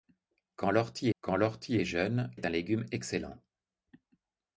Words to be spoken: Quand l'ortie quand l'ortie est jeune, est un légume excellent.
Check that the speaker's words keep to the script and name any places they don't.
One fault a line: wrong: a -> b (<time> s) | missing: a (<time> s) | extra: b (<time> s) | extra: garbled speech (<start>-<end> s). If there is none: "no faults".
no faults